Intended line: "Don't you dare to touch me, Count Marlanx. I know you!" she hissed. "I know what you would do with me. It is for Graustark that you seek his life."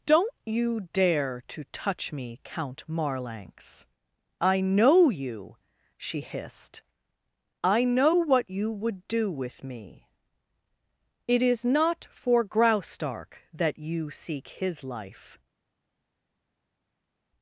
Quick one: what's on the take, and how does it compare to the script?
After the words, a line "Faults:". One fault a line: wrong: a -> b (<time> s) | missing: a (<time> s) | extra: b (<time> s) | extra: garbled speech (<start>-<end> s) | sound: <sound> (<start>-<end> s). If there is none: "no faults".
"Don't you dare to touch me, Count Marlanx. I know you!" she hissed. "I know what you would do with me. It is not for Graustark that you seek his life."
Faults:
extra: not (11.7 s)